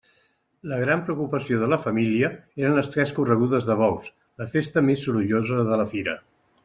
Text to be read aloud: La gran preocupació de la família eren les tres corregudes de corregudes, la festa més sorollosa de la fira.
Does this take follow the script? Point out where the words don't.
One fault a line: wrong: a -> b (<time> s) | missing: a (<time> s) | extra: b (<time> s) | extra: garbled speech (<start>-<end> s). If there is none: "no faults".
wrong: corregudes -> bous (3.8 s)